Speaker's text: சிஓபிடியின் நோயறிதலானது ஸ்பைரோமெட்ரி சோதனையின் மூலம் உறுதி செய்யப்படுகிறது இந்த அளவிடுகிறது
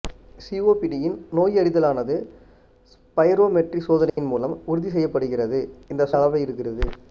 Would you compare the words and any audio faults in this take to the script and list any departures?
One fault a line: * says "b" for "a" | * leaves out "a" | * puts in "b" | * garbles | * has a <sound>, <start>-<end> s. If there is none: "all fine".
* has a dropout, 4.1-4.2 s